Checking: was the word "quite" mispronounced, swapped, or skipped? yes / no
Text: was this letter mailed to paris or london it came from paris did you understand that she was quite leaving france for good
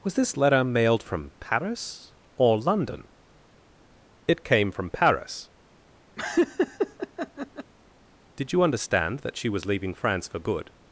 yes